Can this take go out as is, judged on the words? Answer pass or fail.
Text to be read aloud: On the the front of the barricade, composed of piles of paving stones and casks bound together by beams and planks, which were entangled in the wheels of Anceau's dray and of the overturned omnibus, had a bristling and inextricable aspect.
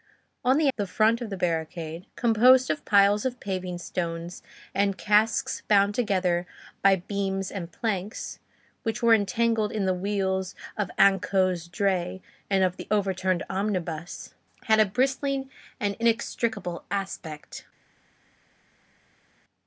pass